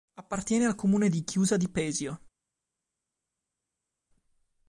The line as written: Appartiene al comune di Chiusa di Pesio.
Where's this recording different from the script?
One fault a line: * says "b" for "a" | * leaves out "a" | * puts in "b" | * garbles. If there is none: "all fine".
all fine